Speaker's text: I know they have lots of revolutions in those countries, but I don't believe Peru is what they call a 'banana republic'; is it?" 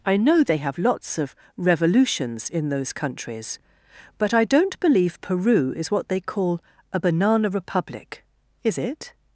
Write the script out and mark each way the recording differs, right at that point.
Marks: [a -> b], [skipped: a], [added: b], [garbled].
I know they have lots of revolutions in those countries, but I don't believe Peru is what they call a 'banana republic'; is it?"